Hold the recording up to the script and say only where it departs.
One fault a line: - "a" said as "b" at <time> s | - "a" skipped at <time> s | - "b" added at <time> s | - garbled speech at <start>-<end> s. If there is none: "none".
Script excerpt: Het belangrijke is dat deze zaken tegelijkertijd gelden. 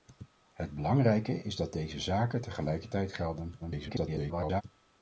- garbled speech at 3.6-4.6 s